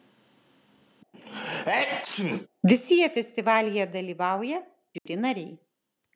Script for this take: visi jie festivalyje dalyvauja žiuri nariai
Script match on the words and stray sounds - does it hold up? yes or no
no